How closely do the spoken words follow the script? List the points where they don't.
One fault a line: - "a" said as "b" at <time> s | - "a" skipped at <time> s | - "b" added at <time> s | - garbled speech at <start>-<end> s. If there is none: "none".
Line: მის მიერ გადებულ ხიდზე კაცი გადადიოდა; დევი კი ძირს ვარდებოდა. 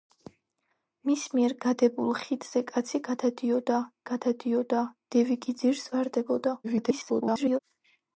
- "გადადიოდა" added at 4.1 s
- garbled speech at 6.6-7.6 s